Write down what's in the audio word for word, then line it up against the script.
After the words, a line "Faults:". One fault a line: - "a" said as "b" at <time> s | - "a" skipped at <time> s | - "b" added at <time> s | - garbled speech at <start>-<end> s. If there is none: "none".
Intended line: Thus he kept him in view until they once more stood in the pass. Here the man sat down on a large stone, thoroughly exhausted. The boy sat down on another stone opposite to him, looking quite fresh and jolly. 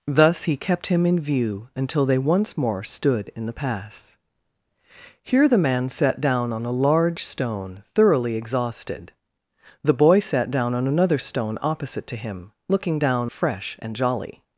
Thus he kept him in view until they once more stood in the pass. Here the man sat down on a large stone, thoroughly exhausted. The boy sat down on another stone opposite to him, looking down fresh and jolly.
Faults:
- "quite" said as "down" at 13.0 s